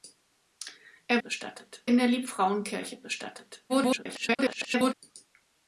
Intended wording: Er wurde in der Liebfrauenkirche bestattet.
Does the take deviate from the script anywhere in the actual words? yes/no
yes